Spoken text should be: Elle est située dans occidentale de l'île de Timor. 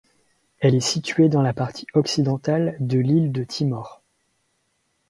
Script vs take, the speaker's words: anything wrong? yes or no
yes